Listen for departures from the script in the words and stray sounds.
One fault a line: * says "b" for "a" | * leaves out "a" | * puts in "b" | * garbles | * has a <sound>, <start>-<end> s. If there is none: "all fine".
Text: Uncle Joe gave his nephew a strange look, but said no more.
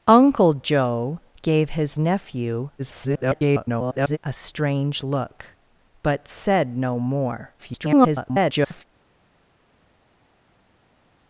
* garbles
* garbles